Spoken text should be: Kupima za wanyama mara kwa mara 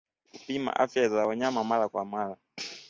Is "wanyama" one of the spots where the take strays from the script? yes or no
no